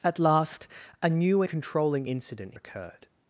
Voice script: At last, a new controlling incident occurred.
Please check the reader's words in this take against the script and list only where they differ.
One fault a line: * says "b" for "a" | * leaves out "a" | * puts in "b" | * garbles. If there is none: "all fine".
all fine